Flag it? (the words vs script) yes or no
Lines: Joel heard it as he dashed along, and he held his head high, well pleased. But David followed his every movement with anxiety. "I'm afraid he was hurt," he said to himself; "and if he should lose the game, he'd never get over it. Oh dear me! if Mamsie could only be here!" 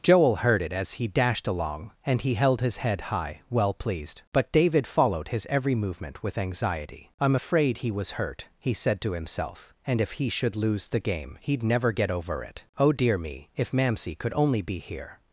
no